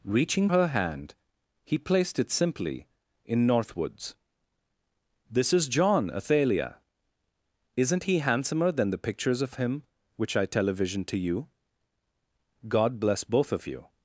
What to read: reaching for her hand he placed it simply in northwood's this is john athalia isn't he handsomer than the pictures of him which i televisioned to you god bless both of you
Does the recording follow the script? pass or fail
fail